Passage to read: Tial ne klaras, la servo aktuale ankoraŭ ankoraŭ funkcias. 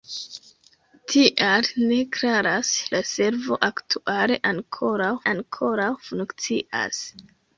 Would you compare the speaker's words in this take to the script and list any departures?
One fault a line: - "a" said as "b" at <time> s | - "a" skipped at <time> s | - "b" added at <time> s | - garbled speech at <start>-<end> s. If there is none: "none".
none